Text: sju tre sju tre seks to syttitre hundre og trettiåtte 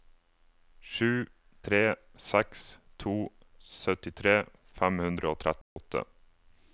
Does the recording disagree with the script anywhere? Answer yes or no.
yes